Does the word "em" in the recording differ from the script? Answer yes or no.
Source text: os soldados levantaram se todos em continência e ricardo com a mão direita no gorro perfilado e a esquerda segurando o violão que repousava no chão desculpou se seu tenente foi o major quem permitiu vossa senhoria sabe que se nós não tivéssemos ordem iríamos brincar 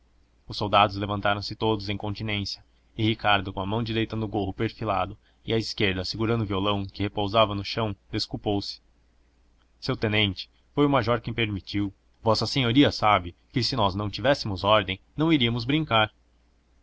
no